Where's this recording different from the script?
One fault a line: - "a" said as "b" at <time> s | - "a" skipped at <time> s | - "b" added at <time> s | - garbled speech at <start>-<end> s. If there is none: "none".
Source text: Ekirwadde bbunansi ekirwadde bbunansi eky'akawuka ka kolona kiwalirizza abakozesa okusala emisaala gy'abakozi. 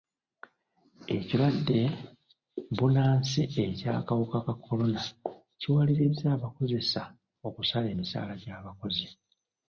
- "ekirwadde bbunansi" skipped at 3.4 s